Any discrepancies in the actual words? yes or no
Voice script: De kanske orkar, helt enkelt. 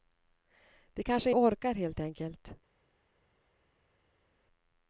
no